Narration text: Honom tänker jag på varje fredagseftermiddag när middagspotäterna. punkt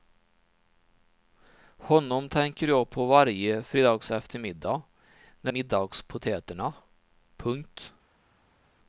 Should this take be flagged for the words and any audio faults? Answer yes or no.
no